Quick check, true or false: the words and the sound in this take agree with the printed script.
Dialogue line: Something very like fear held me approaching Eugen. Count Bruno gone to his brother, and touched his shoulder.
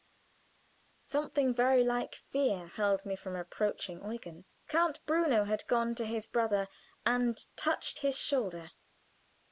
false